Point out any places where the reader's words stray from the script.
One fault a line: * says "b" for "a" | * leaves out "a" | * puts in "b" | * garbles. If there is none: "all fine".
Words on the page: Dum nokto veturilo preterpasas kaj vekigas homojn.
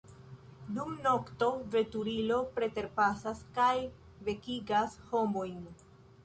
all fine